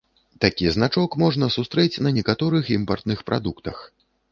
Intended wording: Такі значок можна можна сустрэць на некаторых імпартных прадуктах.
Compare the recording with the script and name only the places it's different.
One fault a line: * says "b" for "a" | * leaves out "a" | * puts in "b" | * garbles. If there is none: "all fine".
* leaves out "можна"